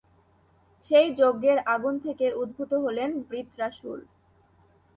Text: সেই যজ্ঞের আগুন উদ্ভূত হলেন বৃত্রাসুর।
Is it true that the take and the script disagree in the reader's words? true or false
true